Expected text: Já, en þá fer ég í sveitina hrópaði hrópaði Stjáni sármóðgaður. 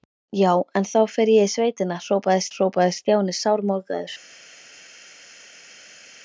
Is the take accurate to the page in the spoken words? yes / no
yes